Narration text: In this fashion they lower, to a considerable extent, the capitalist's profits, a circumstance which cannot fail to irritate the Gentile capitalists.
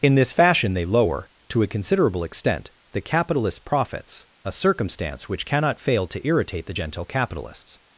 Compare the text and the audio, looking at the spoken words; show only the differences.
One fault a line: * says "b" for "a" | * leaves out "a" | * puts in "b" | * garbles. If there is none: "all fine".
all fine